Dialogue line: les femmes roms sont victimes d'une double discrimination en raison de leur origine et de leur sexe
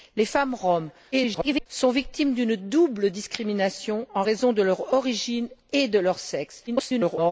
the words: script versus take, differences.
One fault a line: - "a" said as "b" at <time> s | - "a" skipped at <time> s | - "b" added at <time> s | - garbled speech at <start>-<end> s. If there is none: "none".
- garbled speech at 1.1-1.7 s
- garbled speech at 6.7-7.3 s